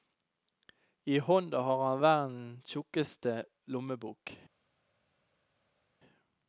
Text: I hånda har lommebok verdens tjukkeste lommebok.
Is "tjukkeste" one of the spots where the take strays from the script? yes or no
no